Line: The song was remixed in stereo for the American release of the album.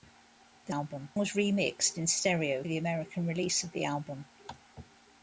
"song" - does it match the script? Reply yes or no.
no